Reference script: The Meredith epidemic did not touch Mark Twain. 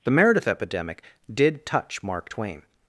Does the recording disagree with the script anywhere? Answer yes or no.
yes